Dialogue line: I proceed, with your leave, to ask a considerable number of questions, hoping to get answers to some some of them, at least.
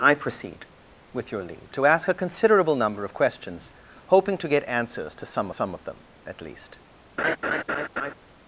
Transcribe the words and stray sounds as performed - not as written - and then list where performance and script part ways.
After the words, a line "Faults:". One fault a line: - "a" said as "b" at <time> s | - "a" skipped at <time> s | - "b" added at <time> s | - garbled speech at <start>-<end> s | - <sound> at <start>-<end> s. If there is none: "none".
I proceed, with your leave, to ask a considerable number of questions, hoping to get answers to some some of them, at least.
Faults:
- laugh at 7.2-8.1 s